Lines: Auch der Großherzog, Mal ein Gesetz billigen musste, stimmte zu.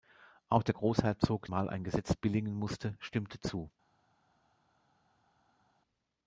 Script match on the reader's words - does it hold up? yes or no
yes